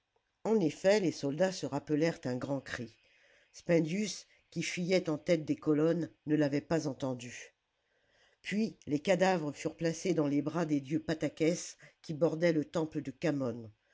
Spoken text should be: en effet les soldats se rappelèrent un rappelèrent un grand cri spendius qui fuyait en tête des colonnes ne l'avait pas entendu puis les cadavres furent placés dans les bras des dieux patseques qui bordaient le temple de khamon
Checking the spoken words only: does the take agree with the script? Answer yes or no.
no